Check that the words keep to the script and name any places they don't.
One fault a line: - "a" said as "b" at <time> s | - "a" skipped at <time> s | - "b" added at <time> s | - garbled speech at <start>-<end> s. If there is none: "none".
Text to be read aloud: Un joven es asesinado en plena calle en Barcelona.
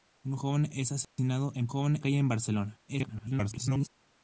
- "plena" said as "joven" at 1.7 s
- garbled speech at 2.9-3.9 s